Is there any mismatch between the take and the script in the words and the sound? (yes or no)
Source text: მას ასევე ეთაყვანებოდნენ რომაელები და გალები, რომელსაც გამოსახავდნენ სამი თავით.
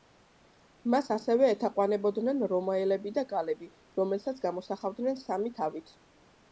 no